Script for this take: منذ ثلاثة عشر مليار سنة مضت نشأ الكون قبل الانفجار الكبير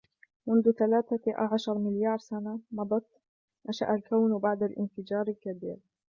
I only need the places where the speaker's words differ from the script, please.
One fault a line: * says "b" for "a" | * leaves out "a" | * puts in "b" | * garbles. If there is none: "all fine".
* says "بعد" for "قبل"